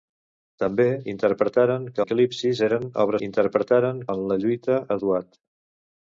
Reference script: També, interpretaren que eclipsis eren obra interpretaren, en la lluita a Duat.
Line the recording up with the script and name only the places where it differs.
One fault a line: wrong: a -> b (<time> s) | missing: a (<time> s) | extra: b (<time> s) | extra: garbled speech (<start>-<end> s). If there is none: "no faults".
no faults